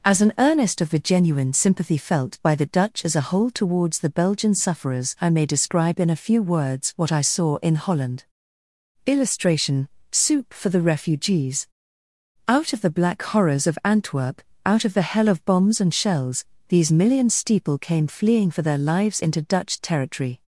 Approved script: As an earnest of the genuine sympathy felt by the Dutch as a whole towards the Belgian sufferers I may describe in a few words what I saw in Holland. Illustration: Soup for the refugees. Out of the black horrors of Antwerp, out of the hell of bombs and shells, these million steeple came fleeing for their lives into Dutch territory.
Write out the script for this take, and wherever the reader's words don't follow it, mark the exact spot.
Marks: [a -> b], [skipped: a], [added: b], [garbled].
As an earnest of the genuine sympathy felt by the Dutch as a whole towards the Belgian sufferers I may describe in a few words what I saw in Holland. Illustration: Soup for the refugees. Out of the black horrors of Antwerp, out of the hell of bombs and shells, these million steeple came fleeing for their lives into Dutch territory.